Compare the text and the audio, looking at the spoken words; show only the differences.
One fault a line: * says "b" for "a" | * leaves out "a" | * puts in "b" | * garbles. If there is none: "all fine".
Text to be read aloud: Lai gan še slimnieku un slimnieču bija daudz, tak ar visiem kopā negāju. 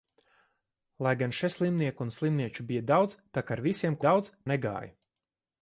* says "daudz" for "kopā"